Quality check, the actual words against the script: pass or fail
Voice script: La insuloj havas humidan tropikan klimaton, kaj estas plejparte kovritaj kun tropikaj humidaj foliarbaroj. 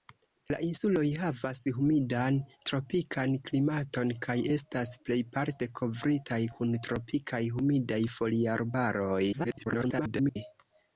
fail